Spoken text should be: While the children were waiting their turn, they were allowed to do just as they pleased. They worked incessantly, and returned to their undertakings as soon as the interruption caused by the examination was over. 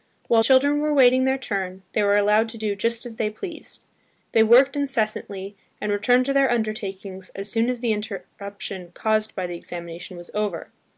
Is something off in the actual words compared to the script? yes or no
yes